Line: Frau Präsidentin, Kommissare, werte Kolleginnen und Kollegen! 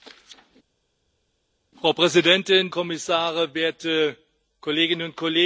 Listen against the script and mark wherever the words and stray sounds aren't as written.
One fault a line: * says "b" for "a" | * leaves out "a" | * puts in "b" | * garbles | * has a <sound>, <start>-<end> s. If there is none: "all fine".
all fine